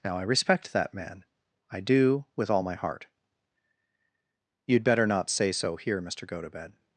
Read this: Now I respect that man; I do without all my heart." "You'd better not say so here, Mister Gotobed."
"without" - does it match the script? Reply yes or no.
no